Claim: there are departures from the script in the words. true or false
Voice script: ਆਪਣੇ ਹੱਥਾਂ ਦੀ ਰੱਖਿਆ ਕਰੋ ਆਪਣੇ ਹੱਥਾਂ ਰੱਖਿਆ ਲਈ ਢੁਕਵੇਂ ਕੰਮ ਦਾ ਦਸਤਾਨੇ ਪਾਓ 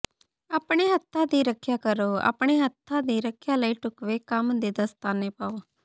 true